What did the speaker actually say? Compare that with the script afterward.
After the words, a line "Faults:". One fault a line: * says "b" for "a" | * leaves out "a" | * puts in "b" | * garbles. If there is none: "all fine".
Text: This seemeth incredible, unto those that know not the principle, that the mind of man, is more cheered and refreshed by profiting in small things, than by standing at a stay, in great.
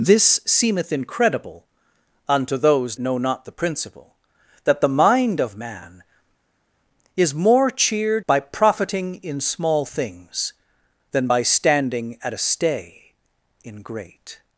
This seemeth incredible, unto those know not the principle, that the mind of man, is more cheered by profiting in small things, than by standing at a stay, in great.
Faults:
* leaves out "that"
* leaves out "and refreshed"